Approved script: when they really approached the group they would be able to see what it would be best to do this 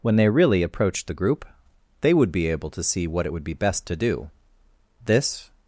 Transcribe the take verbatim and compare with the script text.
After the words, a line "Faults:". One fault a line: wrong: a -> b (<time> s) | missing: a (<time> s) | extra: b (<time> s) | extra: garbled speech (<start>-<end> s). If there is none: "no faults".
when they really approached the group they would be able to see what it would be best to do this
Faults:
no faults